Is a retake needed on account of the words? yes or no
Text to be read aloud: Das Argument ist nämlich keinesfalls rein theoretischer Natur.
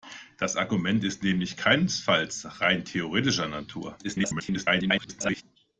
yes